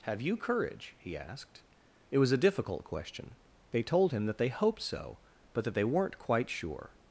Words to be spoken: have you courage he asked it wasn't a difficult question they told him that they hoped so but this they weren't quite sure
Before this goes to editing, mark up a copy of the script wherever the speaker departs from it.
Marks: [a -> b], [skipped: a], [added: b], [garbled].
have you courage he asked it [wasn't -> was] a difficult question they told him that they hoped so but [this -> that] they weren't quite sure